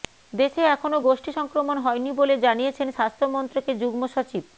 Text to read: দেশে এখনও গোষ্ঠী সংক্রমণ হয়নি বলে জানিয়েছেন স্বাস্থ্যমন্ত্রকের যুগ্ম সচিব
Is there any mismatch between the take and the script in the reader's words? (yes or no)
no